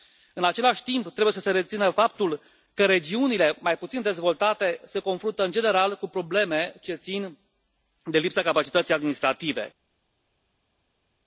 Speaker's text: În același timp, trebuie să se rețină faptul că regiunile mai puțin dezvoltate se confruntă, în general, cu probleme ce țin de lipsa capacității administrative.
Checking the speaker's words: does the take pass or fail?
pass